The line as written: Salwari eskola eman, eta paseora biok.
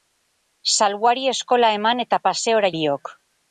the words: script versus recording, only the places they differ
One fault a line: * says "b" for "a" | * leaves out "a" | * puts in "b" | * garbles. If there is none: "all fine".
all fine